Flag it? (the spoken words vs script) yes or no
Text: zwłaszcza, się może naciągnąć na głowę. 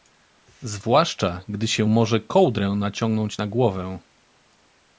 yes